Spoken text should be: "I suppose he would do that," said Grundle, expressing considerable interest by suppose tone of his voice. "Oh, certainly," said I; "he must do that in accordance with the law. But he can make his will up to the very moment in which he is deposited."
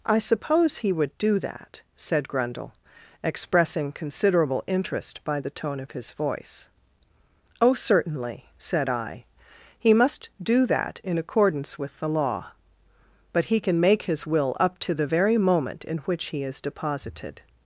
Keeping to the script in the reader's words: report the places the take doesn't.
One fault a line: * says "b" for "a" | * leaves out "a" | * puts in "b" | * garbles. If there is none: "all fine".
* says "the" for "suppose"